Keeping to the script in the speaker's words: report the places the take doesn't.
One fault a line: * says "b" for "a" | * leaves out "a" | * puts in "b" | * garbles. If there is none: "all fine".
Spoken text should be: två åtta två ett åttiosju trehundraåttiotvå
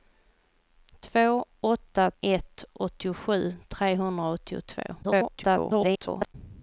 * leaves out "två"
* garbles